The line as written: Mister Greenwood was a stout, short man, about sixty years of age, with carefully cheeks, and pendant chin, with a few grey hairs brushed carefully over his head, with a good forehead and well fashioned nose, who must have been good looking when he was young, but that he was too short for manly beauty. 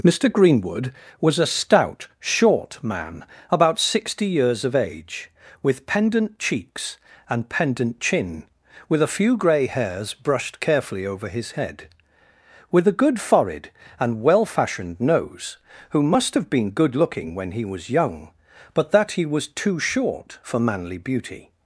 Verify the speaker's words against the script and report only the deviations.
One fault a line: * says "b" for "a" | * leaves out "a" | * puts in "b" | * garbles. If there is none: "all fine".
* says "pendant" for "carefully"